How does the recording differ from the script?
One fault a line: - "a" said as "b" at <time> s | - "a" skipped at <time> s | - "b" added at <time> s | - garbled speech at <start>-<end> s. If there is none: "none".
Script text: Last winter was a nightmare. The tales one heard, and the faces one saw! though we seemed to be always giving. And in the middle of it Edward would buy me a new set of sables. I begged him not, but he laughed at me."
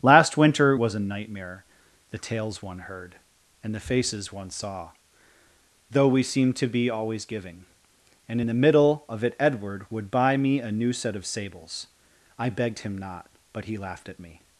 none